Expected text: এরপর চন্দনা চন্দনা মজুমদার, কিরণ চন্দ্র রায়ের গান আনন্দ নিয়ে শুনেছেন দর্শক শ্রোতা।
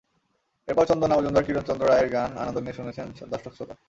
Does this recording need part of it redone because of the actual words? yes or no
yes